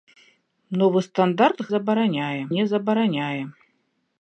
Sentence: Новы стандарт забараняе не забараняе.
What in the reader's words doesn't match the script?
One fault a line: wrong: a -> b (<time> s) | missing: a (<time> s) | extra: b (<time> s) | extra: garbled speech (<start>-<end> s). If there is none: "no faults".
no faults